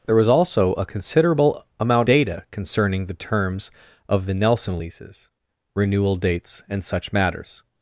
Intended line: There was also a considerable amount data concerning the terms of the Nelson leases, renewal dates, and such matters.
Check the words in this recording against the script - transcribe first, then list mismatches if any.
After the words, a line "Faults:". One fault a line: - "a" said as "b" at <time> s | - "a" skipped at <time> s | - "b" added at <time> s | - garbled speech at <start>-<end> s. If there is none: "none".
There was also a considerable amount data concerning the terms of the Nelson leases, renewal dates, and such matters.
Faults:
none